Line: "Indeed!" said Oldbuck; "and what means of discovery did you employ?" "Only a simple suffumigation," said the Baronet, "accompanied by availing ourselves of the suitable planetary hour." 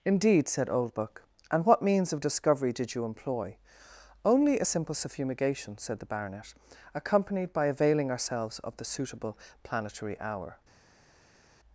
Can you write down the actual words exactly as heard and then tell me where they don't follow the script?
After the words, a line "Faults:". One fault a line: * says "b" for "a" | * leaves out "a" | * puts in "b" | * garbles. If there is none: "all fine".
"Indeed!" said Oldbuck; "and what means of discovery did you employ?" "Only a simple suffumigation," said the Baronet, "accompanied by availing ourselves of the suitable planetary hour."
Faults:
all fine